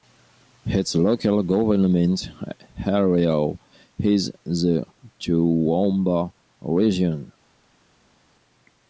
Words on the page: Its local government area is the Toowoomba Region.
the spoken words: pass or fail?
pass